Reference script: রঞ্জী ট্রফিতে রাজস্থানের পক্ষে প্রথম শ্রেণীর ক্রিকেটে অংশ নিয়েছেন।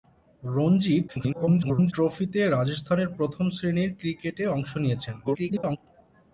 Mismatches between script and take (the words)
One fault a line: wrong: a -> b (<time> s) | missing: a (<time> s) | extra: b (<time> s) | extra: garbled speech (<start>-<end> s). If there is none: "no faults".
extra: garbled speech (1.1-1.9 s)
missing: পক্ষে (3.1 s)
extra: garbled speech (5.2-5.8 s)